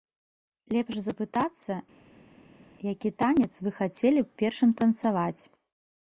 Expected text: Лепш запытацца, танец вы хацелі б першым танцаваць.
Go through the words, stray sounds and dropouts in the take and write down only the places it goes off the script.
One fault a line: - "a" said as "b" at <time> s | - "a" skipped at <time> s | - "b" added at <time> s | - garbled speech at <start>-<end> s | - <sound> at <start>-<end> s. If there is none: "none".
- "які" added at 2.9 s